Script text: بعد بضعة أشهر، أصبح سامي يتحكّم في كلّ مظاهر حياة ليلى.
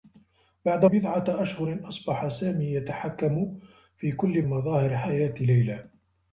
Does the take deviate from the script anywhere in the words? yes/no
no